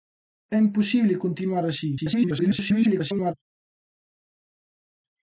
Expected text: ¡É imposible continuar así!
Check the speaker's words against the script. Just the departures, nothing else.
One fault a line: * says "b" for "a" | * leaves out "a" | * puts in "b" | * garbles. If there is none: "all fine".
* garbles